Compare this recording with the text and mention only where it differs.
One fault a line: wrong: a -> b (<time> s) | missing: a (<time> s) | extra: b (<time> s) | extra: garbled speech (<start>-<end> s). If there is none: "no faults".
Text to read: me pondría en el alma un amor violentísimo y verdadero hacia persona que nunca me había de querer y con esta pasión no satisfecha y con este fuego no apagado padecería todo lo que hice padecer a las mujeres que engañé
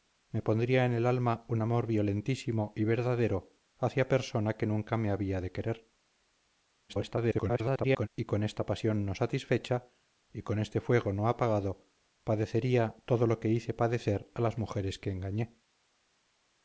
extra: garbled speech (6.9-8.1 s)